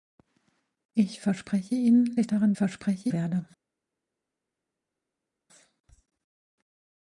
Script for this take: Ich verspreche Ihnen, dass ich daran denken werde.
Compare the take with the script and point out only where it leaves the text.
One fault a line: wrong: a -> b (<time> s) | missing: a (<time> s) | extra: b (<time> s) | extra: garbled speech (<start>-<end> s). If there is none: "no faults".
missing: dass (2.2 s)
wrong: denken -> verspreche (2.6 s)